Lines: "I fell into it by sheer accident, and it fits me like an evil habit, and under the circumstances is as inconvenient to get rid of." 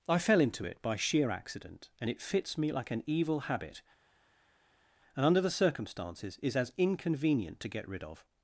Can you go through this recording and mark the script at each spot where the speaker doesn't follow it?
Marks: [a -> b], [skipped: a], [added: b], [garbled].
"I fell into it by sheer accident, and it fits me like an evil habit, and under the circumstances is as inconvenient to get rid of."